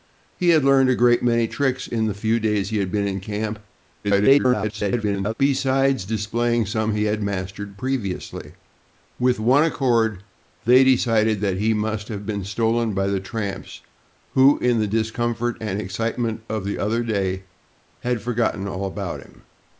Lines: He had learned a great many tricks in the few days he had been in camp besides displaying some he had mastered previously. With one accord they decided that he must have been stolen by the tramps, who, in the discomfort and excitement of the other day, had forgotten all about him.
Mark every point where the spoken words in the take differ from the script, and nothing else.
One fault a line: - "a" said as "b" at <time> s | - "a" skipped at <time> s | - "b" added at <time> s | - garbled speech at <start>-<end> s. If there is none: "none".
- garbled speech at 4.0-5.3 s